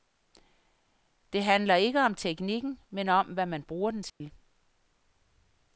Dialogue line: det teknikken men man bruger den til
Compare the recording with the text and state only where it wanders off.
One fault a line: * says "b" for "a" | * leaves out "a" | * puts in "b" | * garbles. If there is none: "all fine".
* puts in "handler ikke om"
* puts in "om hvad"